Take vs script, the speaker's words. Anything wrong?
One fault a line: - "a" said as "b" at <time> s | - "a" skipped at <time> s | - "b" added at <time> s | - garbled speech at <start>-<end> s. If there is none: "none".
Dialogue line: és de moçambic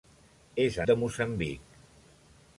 none